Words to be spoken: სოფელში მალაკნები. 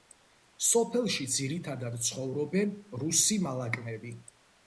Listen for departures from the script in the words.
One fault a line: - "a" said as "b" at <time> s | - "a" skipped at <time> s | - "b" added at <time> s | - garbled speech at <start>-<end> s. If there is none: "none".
- "ძირითადად ცხოვრობენ რუსი" added at 1.3 s